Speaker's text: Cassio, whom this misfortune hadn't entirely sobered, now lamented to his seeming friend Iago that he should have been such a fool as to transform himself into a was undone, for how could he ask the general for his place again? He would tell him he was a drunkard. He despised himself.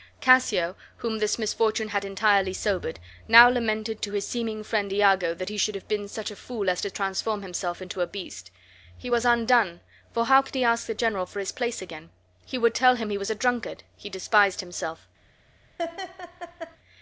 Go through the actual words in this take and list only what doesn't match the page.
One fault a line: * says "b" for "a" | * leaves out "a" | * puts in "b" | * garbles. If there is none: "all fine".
* says "had" for "hadn't"
* puts in "beast He"